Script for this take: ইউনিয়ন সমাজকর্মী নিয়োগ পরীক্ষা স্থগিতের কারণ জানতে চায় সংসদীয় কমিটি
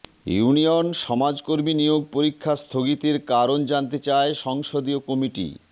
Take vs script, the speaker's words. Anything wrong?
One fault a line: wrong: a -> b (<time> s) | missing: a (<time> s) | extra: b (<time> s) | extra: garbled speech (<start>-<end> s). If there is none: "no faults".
no faults